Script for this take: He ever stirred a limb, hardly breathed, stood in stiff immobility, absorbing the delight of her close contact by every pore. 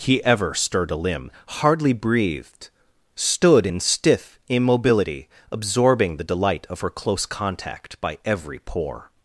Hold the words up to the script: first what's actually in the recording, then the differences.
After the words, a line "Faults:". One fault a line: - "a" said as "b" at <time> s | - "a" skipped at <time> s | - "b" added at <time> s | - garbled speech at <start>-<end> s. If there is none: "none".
He ever stirred a limb, hardly breathed, stood in stiff immobility, absorbing the delight of her close contact by every pore.
Faults:
none